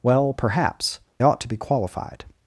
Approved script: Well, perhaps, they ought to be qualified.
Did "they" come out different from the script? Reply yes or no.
yes